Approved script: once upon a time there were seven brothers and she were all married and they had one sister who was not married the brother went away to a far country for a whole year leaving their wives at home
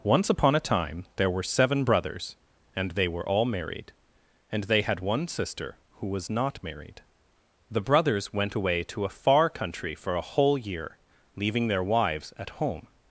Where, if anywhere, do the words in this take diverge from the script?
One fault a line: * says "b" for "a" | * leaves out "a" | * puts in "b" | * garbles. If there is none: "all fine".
* says "they" for "she"
* says "brothers" for "brother"